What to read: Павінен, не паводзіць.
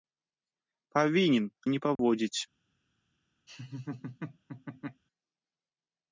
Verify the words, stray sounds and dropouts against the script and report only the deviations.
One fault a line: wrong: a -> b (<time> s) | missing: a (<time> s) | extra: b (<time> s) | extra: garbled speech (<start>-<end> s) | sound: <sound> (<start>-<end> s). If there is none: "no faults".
sound: dropout (2.0-2.0 s)
sound: laugh (3.5-5.0 s)